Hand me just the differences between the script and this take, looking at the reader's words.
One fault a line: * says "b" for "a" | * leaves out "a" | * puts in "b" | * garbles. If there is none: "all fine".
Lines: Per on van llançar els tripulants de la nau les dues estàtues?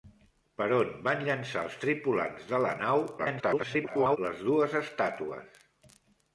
* garbles